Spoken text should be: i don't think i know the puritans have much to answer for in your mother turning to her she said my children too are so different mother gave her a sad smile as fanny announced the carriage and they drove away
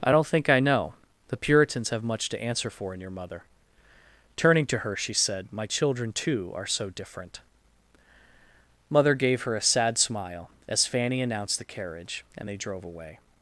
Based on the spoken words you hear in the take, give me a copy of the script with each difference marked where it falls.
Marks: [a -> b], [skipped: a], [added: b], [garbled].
i don't think i know the puritans have much to answer for in your mother turning to her she said my children too are so different mother gave her a sad smile as fanny announced the carriage and they drove away